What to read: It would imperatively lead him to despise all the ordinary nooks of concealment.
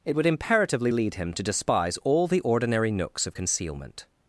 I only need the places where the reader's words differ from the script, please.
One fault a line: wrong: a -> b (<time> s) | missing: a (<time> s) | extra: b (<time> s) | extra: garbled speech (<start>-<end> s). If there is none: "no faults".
no faults